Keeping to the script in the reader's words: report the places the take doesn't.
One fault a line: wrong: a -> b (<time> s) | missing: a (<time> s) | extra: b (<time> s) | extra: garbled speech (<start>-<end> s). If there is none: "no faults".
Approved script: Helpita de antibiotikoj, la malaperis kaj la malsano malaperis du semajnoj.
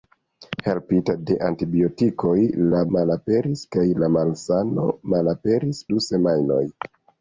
no faults